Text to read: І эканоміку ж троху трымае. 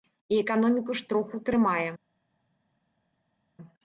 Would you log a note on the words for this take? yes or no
no